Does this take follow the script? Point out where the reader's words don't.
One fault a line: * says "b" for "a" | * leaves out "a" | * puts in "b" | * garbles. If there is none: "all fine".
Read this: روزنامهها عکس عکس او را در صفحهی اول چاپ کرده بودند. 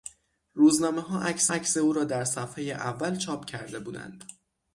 all fine